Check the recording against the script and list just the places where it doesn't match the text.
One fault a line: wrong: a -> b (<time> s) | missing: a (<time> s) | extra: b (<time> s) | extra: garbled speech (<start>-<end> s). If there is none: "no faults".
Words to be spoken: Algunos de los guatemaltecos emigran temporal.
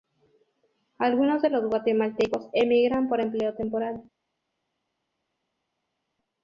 extra: por empleo (3.1 s)